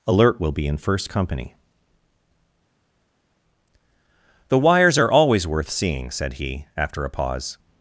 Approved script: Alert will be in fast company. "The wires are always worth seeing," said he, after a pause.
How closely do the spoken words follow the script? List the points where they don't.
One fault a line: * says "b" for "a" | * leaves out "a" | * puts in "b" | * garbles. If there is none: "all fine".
* says "first" for "fast"